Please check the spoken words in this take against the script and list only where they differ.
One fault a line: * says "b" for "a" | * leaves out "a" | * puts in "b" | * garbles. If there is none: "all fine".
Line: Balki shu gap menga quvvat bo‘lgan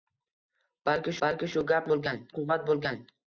* puts in "balki"
* says "bo‘lgan" for "menga"